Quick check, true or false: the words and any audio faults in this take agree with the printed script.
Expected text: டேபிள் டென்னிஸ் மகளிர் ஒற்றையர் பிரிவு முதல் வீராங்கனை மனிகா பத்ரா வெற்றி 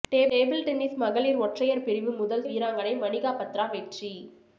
true